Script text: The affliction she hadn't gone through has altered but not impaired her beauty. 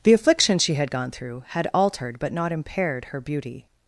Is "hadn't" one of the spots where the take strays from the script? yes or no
yes